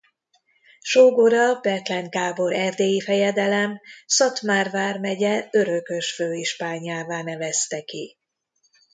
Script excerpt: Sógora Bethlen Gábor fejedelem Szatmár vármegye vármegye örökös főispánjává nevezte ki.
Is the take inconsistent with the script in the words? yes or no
yes